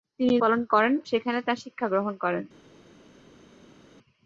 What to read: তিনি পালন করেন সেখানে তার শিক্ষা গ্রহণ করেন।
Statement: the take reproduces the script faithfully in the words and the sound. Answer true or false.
true